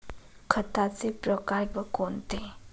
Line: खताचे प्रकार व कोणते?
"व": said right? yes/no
yes